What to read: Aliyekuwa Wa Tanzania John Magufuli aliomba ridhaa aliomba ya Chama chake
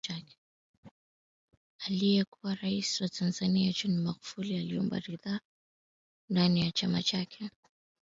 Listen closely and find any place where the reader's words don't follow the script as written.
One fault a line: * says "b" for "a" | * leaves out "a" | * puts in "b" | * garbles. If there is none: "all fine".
* puts in "Rais"
* says "ndani" for "aliomba"